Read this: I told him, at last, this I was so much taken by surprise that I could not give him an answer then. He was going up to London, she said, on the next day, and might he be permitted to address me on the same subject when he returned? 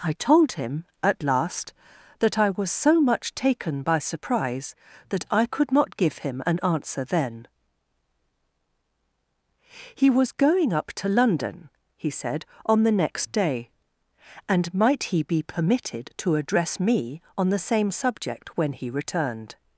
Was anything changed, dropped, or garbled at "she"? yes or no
yes